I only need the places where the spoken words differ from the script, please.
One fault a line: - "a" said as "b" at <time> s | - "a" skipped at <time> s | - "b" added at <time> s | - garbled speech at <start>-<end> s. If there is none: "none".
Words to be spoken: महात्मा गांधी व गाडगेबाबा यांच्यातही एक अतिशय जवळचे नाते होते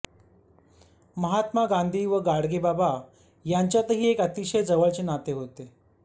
none